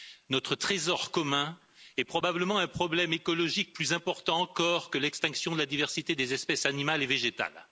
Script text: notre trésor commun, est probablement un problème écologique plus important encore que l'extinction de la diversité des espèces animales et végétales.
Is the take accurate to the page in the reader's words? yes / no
yes